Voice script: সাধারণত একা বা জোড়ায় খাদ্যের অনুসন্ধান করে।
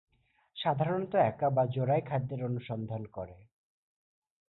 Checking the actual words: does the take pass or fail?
pass